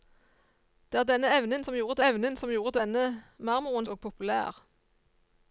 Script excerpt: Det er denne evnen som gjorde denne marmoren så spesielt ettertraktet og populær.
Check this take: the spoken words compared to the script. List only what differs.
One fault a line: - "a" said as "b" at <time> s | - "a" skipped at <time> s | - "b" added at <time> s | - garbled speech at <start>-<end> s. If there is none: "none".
- "denne marmoren så spesielt ettertraktet" said as "evnen som gjorde denne marmoren" at 2.1 s